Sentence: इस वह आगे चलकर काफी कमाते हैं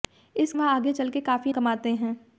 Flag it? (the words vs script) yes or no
no